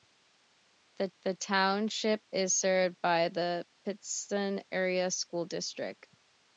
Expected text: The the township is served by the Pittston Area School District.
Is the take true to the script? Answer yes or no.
yes